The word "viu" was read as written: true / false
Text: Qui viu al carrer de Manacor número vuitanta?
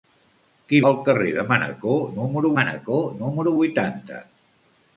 false